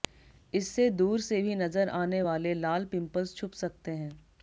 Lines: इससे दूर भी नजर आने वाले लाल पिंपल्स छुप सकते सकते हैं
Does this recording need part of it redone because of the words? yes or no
yes